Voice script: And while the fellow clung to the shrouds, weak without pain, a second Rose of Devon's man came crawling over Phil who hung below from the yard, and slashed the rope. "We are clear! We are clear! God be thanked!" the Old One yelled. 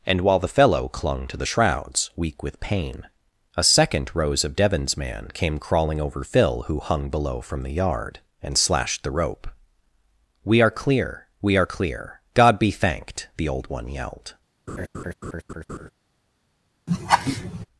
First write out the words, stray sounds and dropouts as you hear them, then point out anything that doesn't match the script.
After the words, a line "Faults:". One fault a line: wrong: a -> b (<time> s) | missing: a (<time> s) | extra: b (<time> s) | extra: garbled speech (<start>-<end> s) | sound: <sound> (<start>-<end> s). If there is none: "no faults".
And while the fellow clung to the shrouds, weak with pain, a second Rose of Devon's man came crawling over Phil who hung below from the yard, and slashed the rope. "We are clear! We are clear! God be thanked!" the Old One yelled.
Faults:
wrong: without -> with (2.4 s)
sound: laugh (14.7-15.9 s)
sound: laugh (16.9-17.7 s)